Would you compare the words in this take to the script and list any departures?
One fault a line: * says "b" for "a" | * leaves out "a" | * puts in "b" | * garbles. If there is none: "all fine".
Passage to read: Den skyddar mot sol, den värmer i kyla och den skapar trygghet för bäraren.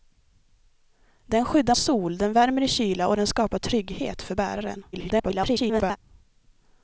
* leaves out "mot"
* garbles